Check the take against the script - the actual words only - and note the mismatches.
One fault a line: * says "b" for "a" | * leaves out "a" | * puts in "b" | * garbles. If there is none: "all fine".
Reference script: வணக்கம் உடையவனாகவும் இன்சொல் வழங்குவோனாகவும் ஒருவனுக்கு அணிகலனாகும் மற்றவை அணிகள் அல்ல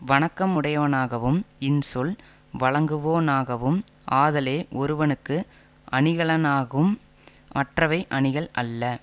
* puts in "ஆதலே"